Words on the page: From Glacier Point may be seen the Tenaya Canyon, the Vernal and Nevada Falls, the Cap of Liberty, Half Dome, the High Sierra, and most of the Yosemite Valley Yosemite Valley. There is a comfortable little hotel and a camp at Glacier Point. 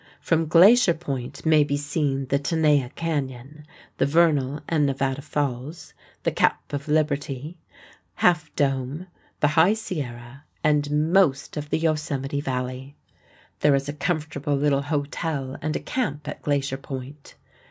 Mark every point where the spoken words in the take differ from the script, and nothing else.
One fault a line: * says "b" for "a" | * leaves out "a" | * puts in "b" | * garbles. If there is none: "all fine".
* leaves out "Yosemite Valley"